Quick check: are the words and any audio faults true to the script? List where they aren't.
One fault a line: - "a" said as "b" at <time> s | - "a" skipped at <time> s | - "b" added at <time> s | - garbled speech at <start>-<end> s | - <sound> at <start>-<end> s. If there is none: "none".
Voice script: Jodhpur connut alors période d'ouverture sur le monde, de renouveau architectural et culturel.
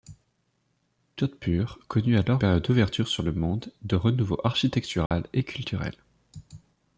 - dropout at 5.1-5.1 s